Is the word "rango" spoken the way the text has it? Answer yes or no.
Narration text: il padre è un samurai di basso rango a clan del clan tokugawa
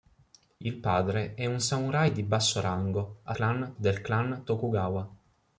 yes